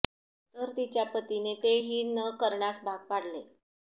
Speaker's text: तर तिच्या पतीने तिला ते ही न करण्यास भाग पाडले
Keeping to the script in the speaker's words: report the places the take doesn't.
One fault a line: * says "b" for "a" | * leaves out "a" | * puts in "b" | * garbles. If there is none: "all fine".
* leaves out "तिला"